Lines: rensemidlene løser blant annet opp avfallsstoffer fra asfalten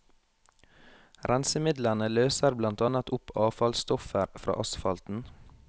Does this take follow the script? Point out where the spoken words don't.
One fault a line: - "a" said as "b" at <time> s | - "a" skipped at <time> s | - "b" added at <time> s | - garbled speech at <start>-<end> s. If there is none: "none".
none